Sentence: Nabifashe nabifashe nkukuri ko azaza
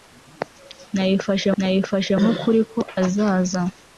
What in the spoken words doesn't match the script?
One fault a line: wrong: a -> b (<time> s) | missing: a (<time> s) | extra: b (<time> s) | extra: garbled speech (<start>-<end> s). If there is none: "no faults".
no faults